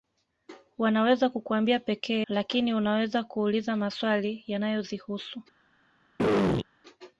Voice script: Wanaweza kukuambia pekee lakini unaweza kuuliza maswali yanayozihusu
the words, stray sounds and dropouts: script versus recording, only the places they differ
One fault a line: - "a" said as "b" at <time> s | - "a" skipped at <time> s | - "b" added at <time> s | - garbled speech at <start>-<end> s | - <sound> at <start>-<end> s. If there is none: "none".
- throat clearing at 6.2-6.7 s